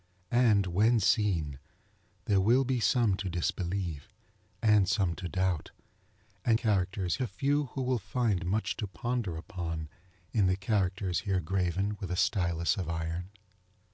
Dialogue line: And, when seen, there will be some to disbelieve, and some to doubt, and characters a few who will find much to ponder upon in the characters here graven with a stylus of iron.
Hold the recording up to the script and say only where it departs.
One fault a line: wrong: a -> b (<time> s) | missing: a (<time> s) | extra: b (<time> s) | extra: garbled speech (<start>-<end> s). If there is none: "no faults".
no faults